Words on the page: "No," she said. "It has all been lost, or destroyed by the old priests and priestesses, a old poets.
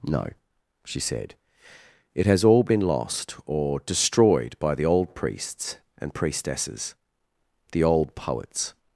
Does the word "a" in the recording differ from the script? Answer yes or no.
yes